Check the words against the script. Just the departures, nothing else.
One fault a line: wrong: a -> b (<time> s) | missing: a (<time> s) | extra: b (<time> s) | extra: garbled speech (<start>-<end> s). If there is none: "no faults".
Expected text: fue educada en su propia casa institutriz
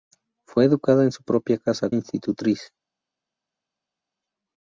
no faults